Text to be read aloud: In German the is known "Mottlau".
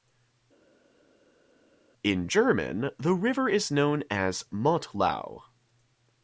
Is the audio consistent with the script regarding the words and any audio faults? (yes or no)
no